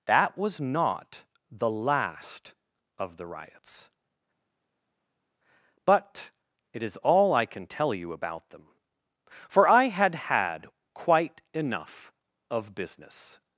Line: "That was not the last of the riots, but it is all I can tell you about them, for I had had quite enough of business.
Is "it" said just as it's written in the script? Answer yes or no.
yes